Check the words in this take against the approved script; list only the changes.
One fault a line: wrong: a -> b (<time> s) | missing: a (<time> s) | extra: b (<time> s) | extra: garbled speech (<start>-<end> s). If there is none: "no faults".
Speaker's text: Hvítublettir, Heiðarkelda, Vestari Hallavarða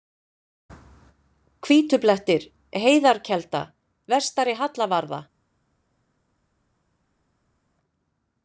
no faults